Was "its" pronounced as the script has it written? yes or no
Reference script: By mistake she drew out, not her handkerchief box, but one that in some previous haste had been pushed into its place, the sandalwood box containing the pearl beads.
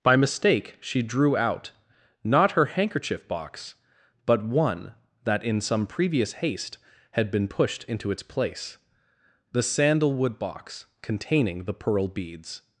yes